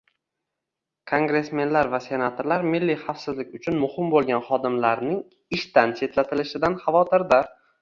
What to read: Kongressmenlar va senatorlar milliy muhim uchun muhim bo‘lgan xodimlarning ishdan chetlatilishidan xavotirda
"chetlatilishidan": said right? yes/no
yes